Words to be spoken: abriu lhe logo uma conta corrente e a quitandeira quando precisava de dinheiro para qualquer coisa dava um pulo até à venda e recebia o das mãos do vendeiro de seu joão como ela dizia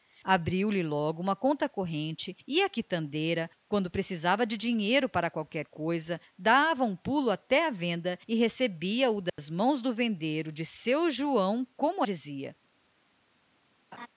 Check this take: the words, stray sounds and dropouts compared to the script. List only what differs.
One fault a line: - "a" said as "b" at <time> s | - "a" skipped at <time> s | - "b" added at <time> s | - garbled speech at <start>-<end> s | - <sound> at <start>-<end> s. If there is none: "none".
- dropout at 9.3-9.4 s
- "ela" skipped at 12.0 s
- laugh at 13.9-14.1 s